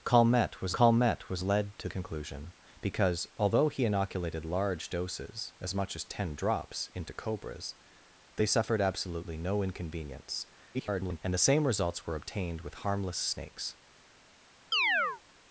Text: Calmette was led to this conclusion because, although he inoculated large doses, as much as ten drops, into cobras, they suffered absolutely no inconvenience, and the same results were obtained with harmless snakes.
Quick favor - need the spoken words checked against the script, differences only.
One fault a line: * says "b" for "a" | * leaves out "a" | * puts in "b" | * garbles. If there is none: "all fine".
* puts in "calmette was"
* leaves out "this"
* garbles